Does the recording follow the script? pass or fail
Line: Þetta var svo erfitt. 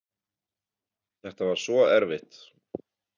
pass